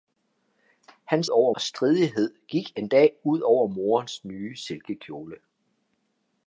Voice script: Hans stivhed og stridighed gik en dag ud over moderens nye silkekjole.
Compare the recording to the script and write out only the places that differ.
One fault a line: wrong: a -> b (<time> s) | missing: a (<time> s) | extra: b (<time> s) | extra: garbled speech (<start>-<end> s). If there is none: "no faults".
wrong: stivhed -> over (1.3 s)